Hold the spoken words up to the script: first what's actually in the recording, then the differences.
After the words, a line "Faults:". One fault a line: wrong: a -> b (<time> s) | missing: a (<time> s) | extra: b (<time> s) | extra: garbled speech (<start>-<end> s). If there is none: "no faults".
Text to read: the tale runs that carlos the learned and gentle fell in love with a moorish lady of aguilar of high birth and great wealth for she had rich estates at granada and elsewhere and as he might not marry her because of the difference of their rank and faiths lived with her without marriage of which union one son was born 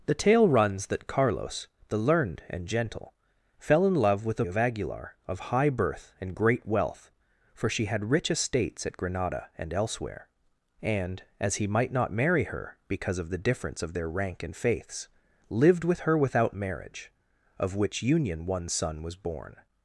the tale runs that carlos the learned and gentle fell in love with a of aguilar of high birth and great wealth for she had rich estates at granada and elsewhere and as he might not marry her because of the difference of their rank and faiths lived with her without marriage of which union one son was born
Faults:
missing: moorish lady (4.5 s)